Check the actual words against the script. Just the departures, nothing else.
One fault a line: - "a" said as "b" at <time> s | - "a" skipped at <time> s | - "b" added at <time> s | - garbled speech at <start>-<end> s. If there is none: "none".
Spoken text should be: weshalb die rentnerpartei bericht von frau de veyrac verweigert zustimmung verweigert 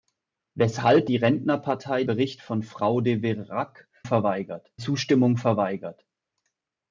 none